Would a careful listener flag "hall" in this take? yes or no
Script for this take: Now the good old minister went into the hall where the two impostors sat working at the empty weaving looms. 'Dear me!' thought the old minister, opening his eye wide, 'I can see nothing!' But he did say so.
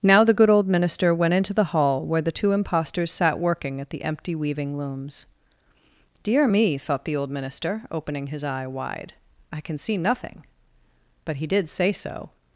no